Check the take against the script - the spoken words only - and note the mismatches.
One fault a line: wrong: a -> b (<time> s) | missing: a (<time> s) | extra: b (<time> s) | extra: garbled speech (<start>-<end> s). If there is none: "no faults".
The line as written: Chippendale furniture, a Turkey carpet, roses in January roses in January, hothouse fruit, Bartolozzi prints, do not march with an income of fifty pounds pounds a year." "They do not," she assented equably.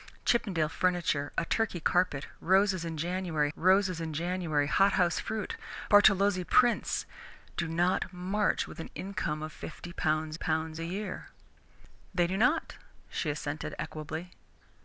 no faults